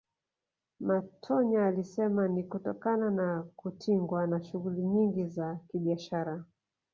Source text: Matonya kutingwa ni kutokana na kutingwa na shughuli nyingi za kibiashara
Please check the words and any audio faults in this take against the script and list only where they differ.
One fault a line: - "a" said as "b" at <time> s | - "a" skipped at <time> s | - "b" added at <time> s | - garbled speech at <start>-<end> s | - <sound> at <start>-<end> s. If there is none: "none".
- "kutingwa" said as "alisema" at 1.7 s